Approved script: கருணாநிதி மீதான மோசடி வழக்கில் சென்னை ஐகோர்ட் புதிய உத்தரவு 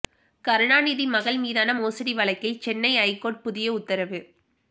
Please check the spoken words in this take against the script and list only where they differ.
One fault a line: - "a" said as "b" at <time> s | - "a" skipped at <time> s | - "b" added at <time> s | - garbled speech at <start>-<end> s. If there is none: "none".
- "மகள்" added at 1.1 s